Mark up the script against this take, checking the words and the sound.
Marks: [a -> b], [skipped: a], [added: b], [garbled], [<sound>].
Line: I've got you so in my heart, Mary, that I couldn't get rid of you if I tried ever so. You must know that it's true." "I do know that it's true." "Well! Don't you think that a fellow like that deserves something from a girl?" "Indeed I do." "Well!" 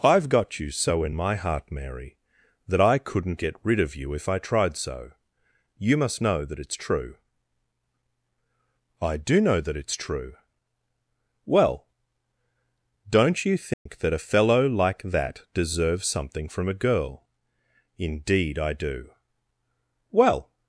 I've got you so in my heart, Mary, that I couldn't get rid of you if I tried [skipped: ever] so. You must know that it's true." "I do know that it's true." "Well! Don't you think [dropout] that a fellow like that deserves something from a girl?" "Indeed I do." "Well!"